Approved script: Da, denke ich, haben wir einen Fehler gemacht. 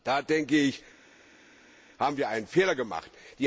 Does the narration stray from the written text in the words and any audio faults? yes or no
no